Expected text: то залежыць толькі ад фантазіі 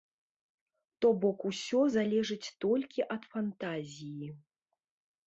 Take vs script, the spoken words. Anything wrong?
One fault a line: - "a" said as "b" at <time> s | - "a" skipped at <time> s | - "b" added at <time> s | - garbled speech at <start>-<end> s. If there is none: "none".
- "бок усё" added at 1.2 s